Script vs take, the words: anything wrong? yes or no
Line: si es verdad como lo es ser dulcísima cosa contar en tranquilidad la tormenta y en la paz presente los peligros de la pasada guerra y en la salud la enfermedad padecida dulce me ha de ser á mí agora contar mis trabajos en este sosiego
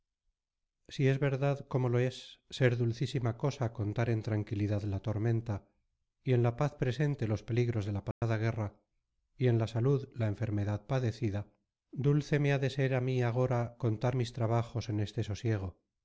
no